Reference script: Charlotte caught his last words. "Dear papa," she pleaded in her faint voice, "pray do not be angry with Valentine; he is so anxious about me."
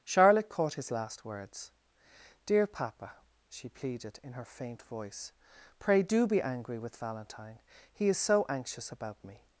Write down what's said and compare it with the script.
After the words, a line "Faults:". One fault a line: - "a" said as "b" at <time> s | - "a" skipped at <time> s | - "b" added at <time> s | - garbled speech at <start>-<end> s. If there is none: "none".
Charlotte caught his last words. "Dear papa," she pleaded in her faint voice, "pray do be angry with Valentine; he is so anxious about me."
Faults:
- "not" skipped at 6.3 s